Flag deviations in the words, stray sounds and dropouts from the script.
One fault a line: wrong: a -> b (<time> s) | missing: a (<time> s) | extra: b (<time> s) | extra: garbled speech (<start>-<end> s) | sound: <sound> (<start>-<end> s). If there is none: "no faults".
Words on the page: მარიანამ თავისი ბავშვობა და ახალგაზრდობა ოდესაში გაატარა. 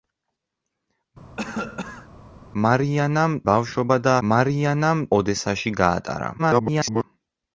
sound: cough (1.4-2.1 s)
missing: თავისი (3.4 s)
wrong: ახალგაზრდობა -> მარიანამ (4.3 s)
extra: garbled speech (6.4-7.0 s)